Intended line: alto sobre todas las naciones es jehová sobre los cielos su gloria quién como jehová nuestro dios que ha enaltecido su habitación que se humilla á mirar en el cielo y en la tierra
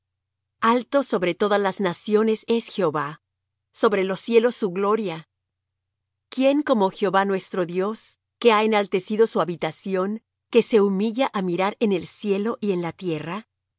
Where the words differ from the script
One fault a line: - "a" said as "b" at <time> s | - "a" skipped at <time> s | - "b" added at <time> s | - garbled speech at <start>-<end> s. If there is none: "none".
none